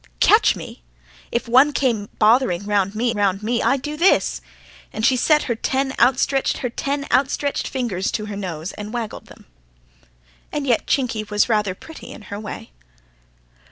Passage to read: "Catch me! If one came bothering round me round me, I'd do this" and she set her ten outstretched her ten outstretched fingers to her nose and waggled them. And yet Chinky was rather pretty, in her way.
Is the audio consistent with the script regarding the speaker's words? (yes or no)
yes